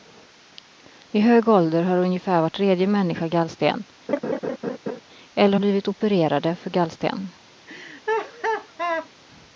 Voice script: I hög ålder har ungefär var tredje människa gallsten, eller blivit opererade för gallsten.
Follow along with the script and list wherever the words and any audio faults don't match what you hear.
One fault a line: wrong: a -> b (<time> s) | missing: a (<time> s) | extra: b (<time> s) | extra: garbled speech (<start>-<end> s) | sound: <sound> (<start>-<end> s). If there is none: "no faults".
sound: laugh (4.1-5.0 s)
sound: laugh (7.7-9.1 s)